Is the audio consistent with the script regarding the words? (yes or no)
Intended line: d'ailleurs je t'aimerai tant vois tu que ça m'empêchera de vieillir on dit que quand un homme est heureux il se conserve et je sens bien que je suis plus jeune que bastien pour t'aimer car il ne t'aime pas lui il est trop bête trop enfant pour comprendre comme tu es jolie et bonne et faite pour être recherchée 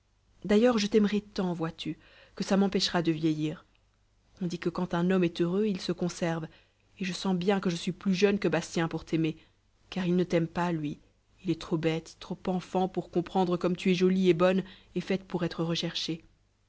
yes